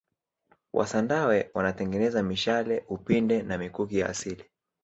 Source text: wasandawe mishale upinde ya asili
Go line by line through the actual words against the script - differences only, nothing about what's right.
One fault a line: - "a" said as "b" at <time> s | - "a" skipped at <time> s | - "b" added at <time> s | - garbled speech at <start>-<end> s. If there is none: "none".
- "wanatengeneza" added at 1.5 s
- "na mikuki" added at 3.4 s